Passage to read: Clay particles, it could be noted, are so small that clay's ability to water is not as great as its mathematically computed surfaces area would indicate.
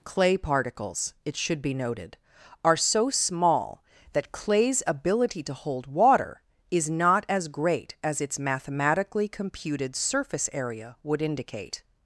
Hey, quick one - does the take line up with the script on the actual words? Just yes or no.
no